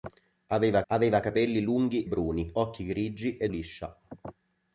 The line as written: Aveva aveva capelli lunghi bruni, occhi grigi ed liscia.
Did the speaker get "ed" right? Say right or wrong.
right